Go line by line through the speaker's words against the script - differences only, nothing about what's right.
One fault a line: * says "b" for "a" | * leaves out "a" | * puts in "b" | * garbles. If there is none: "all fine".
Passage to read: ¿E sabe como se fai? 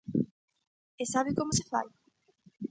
all fine